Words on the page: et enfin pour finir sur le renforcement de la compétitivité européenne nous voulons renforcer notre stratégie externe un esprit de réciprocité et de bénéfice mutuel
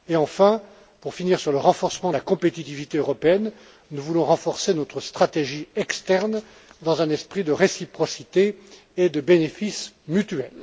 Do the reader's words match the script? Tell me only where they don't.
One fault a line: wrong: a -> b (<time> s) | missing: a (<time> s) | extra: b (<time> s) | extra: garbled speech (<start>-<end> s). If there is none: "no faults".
extra: dans (6.8 s)